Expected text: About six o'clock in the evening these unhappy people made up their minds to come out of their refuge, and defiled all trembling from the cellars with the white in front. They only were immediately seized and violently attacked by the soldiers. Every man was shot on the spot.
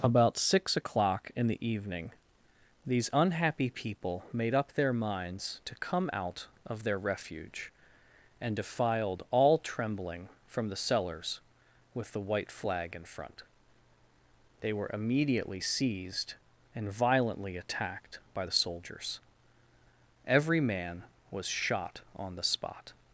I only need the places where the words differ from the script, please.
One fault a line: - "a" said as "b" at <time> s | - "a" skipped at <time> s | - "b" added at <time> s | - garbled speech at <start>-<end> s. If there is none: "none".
- "flag" added at 12.5 s
- "only" skipped at 14.7 s